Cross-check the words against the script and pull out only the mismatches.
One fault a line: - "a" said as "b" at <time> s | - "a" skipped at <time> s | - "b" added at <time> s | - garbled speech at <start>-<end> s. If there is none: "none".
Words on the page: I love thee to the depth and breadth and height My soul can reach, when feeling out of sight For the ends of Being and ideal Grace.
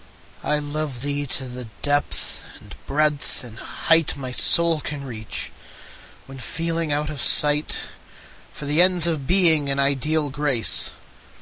none